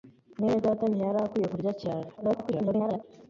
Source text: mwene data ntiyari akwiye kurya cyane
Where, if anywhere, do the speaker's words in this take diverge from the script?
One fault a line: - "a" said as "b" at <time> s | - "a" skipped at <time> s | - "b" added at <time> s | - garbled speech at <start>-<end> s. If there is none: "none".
- garbled speech at 2.2-3.0 s